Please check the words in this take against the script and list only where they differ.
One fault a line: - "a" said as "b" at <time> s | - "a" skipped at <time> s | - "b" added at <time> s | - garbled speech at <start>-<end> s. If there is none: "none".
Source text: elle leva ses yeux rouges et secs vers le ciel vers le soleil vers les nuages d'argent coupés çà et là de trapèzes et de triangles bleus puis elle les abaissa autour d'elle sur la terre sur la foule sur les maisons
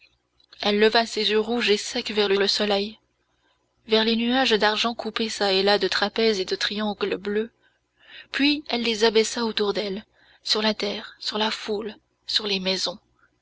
- "ciel vers" skipped at 2.4 s